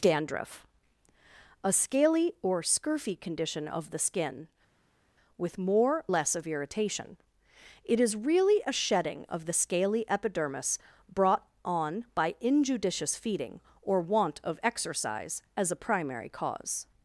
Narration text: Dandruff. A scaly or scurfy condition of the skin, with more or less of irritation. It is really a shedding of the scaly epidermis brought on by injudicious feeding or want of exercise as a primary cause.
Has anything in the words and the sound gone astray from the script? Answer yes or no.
yes